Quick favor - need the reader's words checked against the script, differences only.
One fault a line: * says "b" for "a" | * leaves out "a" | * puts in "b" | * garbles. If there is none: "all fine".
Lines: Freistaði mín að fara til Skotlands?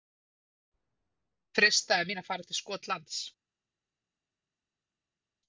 all fine